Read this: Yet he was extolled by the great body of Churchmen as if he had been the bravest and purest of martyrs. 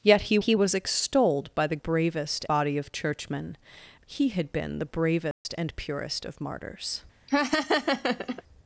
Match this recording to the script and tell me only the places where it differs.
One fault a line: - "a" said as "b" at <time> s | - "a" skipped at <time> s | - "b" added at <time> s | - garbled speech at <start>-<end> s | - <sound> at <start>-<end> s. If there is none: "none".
- "he" added at 0.4 s
- "great" said as "bravest" at 1.8 s
- "as if" skipped at 3.6 s
- dropout at 5.3-5.5 s
- laugh at 7.3-8.4 s